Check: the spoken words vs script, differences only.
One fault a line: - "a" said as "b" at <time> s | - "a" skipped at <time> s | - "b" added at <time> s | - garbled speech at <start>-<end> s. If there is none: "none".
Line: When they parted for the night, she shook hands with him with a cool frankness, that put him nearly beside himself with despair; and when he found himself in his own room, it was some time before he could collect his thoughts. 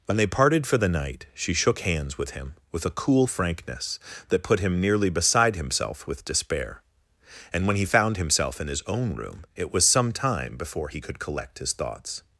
none